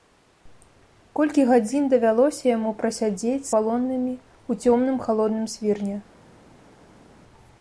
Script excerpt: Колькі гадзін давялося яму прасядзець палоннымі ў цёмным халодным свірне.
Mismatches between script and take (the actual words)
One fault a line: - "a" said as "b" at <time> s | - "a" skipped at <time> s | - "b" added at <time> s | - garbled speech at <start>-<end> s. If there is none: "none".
none